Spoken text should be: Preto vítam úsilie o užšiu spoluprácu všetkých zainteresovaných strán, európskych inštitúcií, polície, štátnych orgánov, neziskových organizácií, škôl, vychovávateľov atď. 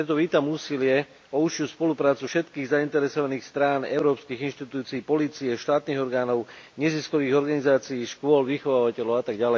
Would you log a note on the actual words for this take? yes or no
no